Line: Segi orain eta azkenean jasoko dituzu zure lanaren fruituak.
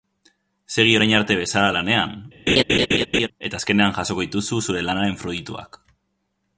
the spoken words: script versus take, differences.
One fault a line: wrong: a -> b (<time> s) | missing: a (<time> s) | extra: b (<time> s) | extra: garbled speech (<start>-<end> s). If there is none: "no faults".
extra: arte bezala lanean (1.2 s)